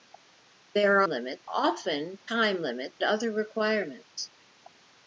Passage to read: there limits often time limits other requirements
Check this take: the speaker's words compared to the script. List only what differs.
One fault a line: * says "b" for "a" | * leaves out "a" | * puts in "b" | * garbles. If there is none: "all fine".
all fine